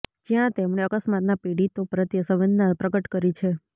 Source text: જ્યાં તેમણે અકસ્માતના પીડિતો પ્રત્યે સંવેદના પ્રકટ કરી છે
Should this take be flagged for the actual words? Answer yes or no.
no